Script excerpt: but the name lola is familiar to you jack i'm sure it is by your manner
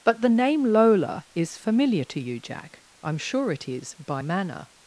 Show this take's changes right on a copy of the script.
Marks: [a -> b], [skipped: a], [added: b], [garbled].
but the name lola is familiar to you jack i'm sure it is by [skipped: your] manner